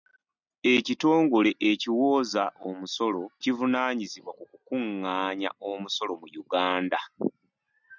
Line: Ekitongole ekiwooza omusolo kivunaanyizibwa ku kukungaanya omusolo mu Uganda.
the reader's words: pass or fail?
pass